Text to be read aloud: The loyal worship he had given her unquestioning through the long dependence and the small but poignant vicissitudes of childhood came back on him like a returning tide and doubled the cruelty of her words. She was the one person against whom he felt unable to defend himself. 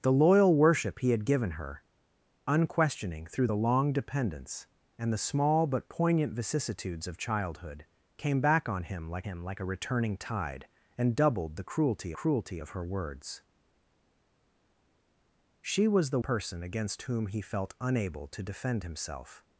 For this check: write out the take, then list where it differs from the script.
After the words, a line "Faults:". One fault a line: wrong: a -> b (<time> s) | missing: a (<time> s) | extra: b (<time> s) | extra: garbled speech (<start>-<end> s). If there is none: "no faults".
The loyal worship he had given her unquestioning through the long dependence and the small but poignant vicissitudes of childhood came back on him like him like a returning tide and doubled the cruelty cruelty of her words. She was the person against whom he felt unable to defend himself.
Faults:
extra: him like (9.2 s)
extra: cruelty (12.1 s)
missing: one (16.2 s)